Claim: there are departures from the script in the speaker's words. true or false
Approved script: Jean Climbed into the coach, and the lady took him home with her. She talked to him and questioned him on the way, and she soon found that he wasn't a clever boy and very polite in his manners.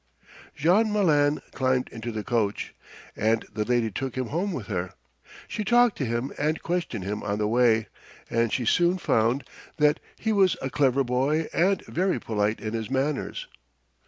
true